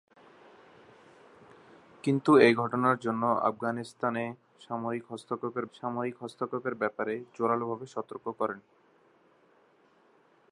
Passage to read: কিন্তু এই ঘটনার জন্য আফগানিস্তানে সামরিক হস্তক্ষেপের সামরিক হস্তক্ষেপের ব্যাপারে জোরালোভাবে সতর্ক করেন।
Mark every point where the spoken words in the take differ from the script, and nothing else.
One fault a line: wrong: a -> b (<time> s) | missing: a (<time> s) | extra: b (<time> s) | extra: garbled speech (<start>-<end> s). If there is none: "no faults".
no faults